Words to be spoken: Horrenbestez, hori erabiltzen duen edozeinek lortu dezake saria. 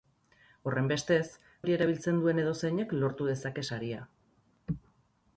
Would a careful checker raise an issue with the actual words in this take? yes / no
no